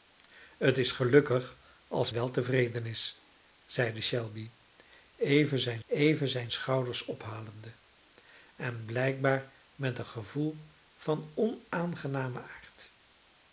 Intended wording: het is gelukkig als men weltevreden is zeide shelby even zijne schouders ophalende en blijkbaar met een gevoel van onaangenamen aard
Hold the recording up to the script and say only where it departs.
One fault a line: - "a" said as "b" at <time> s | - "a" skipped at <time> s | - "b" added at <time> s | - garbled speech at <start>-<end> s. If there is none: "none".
- "men" skipped at 2.1 s
- "even zijne" added at 5.9 s